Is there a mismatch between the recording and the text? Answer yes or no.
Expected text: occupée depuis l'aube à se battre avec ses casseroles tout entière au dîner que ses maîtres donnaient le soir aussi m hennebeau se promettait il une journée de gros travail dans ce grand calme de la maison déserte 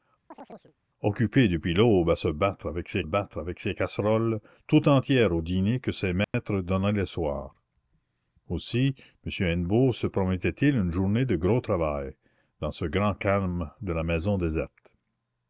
yes